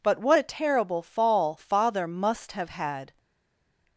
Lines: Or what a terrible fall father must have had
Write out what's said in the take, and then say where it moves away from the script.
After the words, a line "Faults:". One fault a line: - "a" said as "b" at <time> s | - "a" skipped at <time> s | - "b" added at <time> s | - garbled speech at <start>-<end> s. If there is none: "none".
But what a terrible fall father must have had
Faults:
- "Or" said as "But" at 0.0 s